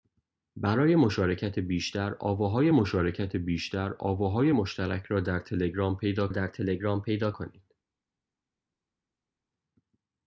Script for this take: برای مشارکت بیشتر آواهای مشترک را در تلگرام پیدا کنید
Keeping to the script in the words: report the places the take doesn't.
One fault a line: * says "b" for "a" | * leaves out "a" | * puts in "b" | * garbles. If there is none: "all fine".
* puts in "مشارکت بیشتر آواهای"
* puts in "در تلگرام پیدا"